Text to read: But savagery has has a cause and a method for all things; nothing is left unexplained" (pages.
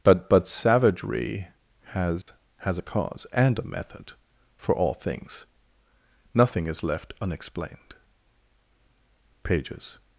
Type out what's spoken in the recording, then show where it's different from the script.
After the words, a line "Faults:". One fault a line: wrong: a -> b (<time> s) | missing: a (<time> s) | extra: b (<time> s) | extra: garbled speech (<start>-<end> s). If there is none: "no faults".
But but savagery has has a cause and a method for all things; nothing is left unexplained" (pages.
Faults:
extra: but (0.3 s)